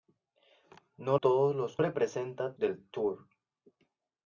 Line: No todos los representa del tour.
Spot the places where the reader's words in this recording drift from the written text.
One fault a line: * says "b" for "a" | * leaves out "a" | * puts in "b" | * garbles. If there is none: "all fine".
all fine